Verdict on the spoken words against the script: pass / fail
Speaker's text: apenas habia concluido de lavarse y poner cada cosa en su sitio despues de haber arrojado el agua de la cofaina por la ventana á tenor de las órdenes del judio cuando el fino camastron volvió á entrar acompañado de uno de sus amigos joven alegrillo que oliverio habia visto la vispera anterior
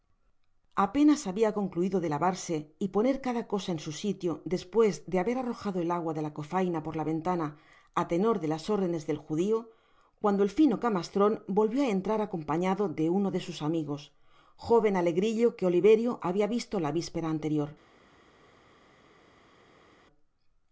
pass